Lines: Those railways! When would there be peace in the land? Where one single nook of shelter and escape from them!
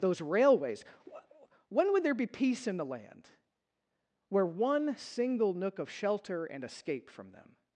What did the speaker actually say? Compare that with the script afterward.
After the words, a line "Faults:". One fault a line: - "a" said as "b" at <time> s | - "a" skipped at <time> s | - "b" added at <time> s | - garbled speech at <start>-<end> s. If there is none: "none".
Those railways! When would there be peace in the land? Where one single nook of shelter and escape from them!
Faults:
none